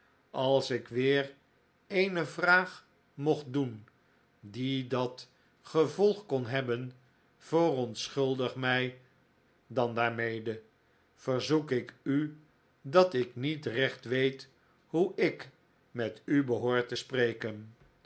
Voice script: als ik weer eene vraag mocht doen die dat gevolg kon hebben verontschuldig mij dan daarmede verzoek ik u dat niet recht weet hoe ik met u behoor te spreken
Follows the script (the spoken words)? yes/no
no